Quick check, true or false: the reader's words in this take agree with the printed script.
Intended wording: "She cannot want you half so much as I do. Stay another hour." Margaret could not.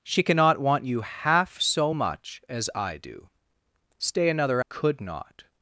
false